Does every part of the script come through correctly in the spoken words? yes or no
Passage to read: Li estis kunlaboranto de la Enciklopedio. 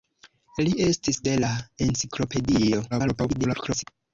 no